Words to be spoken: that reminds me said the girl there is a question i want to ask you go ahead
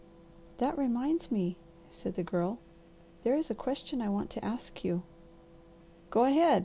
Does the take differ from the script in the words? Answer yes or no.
no